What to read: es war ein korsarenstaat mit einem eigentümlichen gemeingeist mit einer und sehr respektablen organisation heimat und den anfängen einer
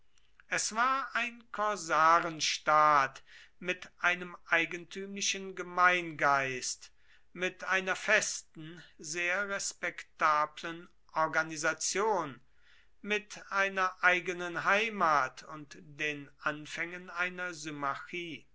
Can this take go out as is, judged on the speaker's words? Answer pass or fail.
fail